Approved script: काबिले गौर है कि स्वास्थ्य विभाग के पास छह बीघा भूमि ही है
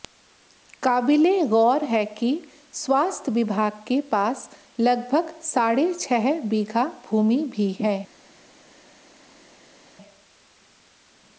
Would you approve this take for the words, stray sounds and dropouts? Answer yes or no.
no